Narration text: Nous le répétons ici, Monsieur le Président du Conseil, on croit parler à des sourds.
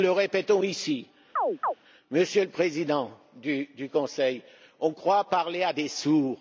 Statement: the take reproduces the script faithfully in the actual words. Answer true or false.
true